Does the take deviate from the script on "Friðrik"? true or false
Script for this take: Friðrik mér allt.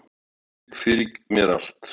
false